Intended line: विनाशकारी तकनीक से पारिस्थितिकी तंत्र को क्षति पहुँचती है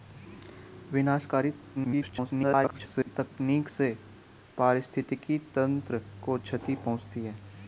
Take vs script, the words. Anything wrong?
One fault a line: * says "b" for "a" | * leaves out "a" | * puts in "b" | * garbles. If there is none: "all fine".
* garbles